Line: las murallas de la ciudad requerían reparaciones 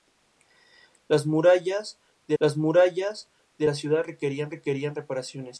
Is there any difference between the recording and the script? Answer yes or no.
yes